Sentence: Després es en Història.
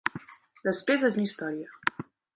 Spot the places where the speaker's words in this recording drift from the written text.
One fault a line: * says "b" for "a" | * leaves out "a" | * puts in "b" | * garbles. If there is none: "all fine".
all fine